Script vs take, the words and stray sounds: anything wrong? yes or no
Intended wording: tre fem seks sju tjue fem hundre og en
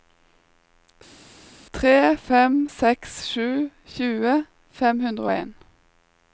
no